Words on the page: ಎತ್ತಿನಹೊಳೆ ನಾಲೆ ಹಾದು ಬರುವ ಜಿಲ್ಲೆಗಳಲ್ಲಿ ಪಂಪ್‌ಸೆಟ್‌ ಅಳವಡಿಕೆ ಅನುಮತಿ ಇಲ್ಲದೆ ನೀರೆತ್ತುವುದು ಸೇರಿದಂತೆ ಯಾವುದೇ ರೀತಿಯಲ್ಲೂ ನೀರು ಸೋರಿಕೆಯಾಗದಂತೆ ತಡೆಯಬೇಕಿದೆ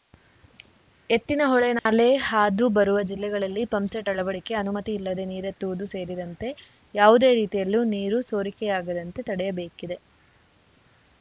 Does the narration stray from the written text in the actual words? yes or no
no